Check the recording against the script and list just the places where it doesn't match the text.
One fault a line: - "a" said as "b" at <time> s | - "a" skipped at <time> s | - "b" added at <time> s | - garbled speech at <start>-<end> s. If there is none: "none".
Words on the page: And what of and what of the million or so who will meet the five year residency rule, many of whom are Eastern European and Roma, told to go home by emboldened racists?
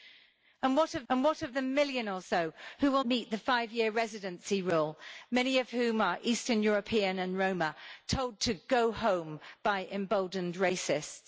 none